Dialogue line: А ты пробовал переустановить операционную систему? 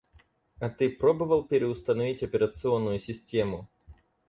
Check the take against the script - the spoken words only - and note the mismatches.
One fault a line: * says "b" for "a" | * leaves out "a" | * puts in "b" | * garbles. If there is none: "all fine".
all fine